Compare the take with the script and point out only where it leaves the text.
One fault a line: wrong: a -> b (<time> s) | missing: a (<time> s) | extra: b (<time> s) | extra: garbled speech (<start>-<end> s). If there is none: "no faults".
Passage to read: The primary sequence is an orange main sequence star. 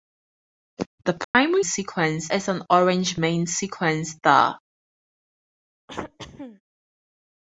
no faults